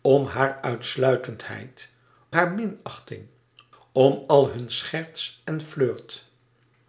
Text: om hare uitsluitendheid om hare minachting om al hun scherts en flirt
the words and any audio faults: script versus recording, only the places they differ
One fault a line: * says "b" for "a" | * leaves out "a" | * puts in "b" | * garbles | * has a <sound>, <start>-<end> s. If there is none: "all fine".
* leaves out "om"